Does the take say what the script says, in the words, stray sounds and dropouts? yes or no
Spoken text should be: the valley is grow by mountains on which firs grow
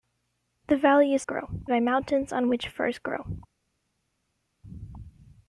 yes